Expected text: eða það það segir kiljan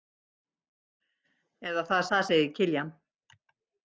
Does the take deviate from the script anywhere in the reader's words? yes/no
no